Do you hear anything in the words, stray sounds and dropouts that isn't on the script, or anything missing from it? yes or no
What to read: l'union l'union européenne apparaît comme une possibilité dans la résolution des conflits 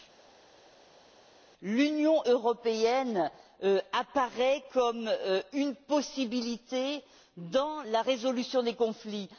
yes